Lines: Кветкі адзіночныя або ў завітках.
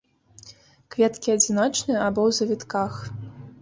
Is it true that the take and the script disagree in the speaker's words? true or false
false